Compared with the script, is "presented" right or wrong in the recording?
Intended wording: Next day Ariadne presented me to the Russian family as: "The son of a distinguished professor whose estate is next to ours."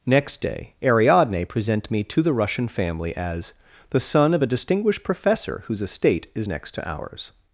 wrong